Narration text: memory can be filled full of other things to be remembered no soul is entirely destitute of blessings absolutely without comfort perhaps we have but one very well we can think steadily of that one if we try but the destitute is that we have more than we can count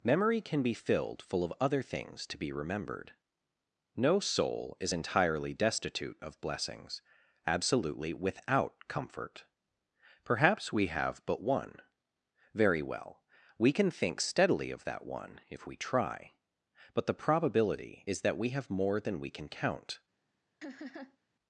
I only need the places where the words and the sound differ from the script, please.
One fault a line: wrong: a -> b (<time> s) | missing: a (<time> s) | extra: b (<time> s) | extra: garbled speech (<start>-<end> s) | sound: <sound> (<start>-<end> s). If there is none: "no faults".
wrong: destitute -> probability (17.1 s)
sound: laugh (20.6-21.2 s)